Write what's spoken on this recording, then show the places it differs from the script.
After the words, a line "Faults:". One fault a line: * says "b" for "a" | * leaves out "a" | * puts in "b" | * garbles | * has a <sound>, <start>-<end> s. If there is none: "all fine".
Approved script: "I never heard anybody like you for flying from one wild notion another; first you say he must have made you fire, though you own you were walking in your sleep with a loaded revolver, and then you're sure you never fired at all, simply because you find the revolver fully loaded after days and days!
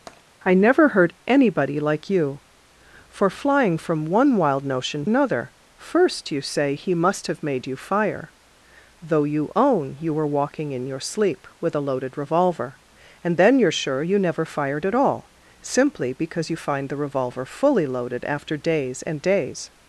"I never heard anybody like you for flying from one wild notion another; first you say he must have made you fire, though you own you were walking in your sleep with a loaded revolver, and then you're sure you never fired at all, simply because you find the revolver fully loaded after days and days!
Faults:
* has a tap, 0.1-0.2 s